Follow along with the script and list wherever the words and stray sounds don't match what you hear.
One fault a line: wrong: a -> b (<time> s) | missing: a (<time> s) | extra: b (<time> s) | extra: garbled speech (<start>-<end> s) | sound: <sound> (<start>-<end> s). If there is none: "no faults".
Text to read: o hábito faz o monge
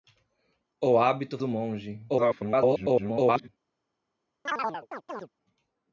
missing: faz (1.4 s)
extra: garbled speech (2.1-3.5 s)
sound: chirp (4.5-5.3 s)